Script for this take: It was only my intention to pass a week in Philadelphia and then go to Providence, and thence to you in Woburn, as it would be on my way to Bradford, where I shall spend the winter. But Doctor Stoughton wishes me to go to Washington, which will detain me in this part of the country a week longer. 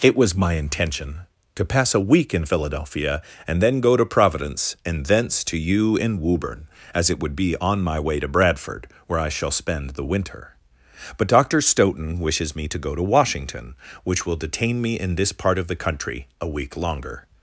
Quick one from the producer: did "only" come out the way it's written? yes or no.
no